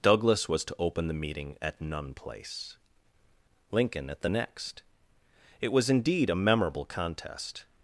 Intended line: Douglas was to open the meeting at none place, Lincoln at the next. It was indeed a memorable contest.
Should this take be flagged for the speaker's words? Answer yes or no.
no